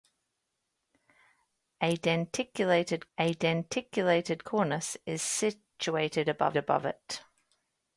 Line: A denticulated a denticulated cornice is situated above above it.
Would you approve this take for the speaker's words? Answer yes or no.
yes